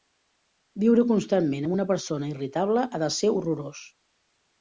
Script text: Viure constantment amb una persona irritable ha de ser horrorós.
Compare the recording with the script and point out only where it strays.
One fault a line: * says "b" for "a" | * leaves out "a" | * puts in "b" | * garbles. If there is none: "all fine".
all fine